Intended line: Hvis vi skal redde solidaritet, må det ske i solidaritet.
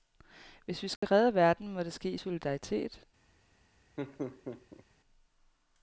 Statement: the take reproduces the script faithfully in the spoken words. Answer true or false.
false